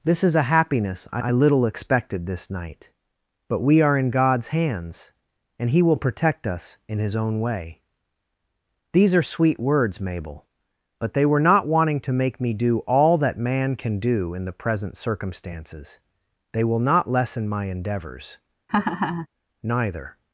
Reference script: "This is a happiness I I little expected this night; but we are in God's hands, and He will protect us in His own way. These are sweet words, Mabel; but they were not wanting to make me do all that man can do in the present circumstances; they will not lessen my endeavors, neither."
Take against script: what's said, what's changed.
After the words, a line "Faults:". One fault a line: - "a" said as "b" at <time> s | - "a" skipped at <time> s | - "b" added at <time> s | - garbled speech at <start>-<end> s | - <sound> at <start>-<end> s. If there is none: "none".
"This is a happiness I I little expected this night; but we are in God's hands, and He will protect us in His own way. These are sweet words, Mabel; but they were not wanting to make me do all that man can do in the present circumstances; they will not lessen my endeavors, neither."
Faults:
- laugh at 18.7-19.3 s